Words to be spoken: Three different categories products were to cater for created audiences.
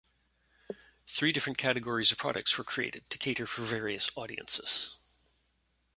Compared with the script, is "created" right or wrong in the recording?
wrong